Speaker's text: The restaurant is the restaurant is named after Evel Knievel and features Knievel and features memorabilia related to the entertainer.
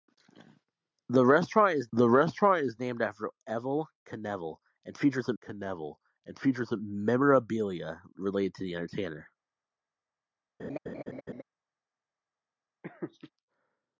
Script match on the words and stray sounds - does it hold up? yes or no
no